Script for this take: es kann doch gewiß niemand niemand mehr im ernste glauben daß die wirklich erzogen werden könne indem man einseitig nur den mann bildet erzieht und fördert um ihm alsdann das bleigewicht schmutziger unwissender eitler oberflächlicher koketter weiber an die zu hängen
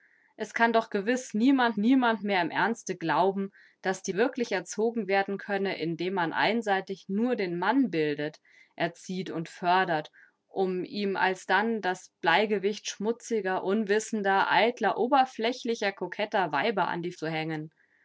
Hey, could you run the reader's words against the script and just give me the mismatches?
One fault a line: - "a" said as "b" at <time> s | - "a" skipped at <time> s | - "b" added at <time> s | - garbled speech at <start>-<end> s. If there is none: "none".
none